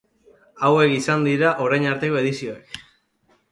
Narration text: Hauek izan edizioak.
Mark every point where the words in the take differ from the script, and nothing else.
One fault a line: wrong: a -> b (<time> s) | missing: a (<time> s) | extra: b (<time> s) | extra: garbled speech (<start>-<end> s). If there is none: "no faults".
extra: dira orain arteko (1.3 s)